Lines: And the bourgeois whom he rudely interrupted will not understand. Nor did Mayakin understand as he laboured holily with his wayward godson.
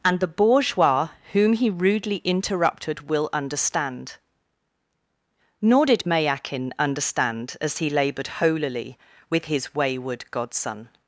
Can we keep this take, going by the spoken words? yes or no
no